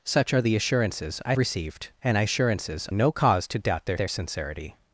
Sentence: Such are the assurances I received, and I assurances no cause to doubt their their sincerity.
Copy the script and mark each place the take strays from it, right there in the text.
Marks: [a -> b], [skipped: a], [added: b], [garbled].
Such are the assurances I received, and I assurances no cause to doubt their their sincerity.